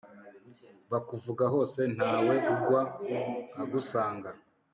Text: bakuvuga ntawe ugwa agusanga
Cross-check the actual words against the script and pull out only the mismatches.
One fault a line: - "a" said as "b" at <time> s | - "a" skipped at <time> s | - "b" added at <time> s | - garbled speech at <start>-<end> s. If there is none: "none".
- "hose" added at 1.5 s